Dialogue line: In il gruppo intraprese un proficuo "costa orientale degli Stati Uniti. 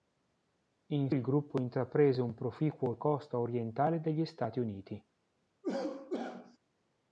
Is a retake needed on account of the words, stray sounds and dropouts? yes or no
yes